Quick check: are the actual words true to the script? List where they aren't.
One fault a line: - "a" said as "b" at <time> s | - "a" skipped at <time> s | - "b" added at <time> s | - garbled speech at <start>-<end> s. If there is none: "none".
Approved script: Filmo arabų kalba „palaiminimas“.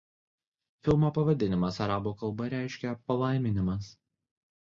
- "pavadinimas" added at 1.2 s
- "reiškia" added at 2.5 s